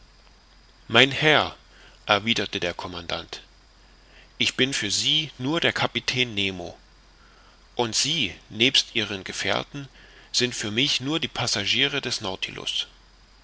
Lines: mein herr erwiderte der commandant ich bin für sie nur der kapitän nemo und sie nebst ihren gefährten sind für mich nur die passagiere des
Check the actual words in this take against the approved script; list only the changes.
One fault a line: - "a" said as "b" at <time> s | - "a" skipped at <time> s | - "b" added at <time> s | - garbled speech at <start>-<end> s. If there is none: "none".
none